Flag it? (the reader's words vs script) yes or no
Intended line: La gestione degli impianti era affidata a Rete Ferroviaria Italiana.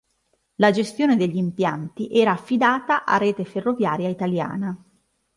no